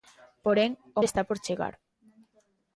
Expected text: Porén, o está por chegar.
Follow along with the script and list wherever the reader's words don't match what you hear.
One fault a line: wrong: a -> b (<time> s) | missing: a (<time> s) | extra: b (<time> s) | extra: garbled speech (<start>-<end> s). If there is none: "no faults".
no faults